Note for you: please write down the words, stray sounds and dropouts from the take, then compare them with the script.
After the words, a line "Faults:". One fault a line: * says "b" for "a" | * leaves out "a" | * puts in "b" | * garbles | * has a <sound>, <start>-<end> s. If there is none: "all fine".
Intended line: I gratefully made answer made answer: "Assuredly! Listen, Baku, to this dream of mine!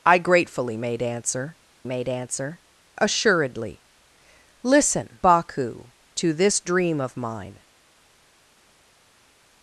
I gratefully made answer made answer: "Assuredly! Listen, Baku, to this dream of mine!
Faults:
all fine